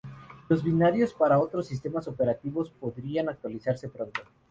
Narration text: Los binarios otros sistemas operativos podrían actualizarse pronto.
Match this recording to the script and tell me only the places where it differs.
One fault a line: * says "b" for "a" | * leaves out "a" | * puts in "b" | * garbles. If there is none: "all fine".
* puts in "para"